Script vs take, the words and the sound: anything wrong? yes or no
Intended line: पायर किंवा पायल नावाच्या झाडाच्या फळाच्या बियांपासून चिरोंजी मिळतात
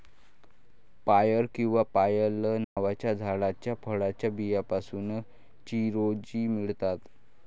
yes